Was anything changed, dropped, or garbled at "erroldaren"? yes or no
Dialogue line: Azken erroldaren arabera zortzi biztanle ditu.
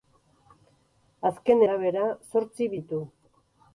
yes